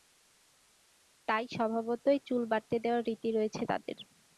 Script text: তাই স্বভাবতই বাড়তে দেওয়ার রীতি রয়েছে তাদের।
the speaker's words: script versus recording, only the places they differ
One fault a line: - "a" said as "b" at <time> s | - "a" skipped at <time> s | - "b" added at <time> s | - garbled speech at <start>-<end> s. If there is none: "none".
- "চুল" added at 2.3 s